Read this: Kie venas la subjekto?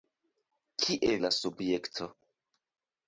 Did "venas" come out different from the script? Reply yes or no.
yes